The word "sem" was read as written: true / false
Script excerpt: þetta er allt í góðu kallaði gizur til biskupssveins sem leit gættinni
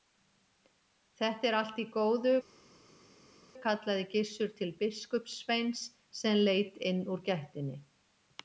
true